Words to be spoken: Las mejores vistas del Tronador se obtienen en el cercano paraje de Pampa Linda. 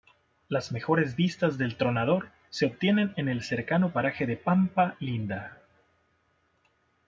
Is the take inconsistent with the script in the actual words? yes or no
no